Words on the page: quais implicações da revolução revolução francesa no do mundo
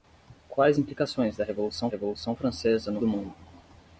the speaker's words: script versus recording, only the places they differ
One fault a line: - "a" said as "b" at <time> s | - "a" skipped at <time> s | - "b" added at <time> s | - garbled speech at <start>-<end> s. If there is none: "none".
none